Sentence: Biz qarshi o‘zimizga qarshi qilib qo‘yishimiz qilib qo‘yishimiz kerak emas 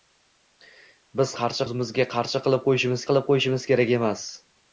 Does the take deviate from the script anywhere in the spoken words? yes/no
no